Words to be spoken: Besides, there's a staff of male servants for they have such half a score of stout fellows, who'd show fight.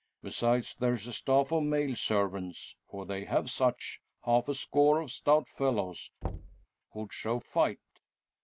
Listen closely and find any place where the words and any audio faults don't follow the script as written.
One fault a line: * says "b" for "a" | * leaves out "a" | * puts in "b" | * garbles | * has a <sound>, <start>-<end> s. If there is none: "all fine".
* has a thud, 6.2-6.7 s